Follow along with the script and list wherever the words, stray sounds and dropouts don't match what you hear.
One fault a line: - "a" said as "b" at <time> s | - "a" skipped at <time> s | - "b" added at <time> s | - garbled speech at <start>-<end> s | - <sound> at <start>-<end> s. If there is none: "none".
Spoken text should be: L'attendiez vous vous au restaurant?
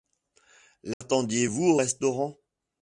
- dropout at 0.9-1.0 s
- "vous" skipped at 1.6 s